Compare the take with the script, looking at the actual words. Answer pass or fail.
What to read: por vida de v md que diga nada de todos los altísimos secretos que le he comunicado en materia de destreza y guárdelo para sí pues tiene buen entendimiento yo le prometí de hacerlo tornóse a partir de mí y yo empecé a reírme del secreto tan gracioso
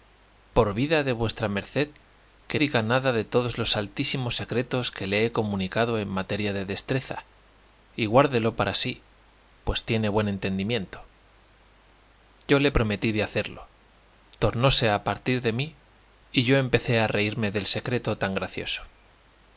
pass